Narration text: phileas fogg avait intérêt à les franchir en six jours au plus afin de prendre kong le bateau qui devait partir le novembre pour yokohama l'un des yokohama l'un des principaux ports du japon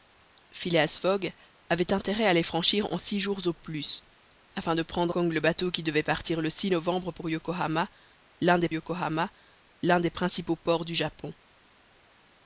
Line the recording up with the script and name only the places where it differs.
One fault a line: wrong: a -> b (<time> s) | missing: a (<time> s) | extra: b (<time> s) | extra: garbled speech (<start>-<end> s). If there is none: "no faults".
no faults